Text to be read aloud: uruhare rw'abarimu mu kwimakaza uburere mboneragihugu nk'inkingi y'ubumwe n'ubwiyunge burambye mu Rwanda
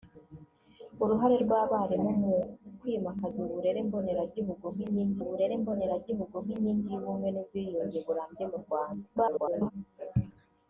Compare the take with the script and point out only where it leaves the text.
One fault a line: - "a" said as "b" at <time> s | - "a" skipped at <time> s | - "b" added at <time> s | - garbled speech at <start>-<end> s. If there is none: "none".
- "uburere mboneragihugu nk'inkingi" added at 5.2 s
- garbled speech at 9.2-9.7 s